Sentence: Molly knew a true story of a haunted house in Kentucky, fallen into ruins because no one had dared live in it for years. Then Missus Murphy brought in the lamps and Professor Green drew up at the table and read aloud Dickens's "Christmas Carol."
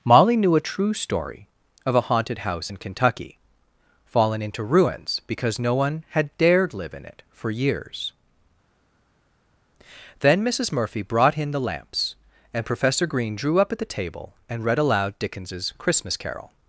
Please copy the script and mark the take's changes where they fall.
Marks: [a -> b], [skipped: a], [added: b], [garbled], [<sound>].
Molly knew a true story of a haunted house in Kentucky, fallen into ruins because no one had dared live in it for years. Then Missus Murphy brought in the lamps and Professor Green drew up at the table and read aloud Dickens's "Christmas Carol."